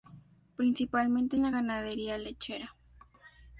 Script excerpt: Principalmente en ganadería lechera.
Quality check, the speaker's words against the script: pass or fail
fail